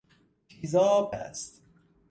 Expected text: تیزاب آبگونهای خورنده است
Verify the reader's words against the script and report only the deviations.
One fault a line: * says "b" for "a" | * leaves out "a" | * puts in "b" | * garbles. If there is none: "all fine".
* leaves out "آبگونهای خورنده"